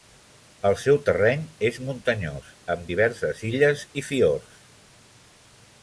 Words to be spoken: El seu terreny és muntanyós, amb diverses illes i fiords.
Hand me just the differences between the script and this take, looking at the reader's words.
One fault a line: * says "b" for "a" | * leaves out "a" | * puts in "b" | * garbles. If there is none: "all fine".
all fine